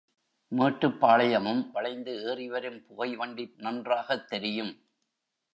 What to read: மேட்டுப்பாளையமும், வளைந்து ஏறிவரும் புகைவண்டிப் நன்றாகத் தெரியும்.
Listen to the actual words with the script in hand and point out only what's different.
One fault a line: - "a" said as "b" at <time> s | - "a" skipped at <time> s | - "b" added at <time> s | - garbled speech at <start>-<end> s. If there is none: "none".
none